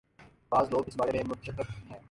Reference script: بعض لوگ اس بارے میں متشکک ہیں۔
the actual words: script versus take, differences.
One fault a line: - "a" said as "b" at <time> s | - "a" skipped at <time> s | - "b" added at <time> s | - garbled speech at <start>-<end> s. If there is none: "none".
none